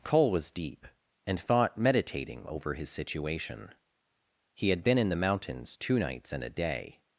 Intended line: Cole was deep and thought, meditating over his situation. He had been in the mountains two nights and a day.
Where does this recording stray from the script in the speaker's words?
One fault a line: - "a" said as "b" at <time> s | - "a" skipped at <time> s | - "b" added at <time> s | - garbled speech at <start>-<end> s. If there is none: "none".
none